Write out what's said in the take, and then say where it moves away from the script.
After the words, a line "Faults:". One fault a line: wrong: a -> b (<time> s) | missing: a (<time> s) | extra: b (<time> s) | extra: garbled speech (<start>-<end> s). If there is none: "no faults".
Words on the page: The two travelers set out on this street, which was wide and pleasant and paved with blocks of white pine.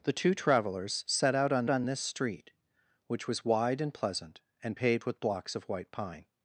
The two travelers set out on on this street, which was wide and pleasant and paved with blocks of white pine.
Faults:
extra: on (1.7 s)